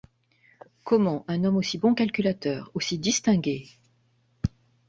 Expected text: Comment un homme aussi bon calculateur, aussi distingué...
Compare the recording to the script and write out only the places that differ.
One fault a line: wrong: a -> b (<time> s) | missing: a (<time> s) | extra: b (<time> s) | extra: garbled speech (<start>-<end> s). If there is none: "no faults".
no faults